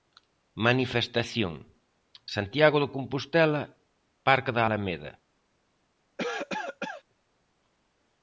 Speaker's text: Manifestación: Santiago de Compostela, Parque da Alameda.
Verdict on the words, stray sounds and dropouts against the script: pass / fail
fail